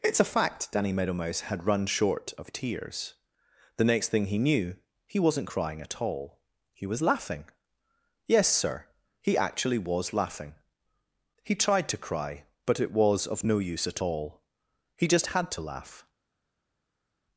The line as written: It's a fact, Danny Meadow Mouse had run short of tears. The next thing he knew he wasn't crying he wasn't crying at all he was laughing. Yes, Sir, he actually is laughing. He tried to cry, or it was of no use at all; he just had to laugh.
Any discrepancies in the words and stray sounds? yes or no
yes